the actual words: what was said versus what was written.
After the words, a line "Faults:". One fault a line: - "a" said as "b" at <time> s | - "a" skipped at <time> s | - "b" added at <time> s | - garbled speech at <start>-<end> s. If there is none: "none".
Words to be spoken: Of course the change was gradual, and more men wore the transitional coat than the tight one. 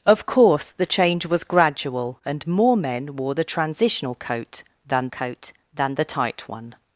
Of course the change was gradual, and more men wore the transitional coat than coat than the tight one.
Faults:
- "coat than" added at 5.1 s